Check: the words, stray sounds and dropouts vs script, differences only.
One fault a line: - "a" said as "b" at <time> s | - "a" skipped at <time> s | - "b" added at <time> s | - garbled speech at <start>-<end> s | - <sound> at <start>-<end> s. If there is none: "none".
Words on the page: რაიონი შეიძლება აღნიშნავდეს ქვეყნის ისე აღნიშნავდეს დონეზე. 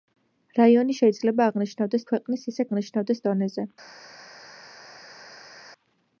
none